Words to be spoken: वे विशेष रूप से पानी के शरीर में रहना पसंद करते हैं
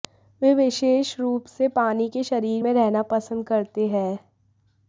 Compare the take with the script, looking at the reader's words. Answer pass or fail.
pass